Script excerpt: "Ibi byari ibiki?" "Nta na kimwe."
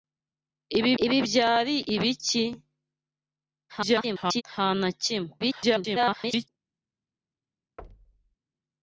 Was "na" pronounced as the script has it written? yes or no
yes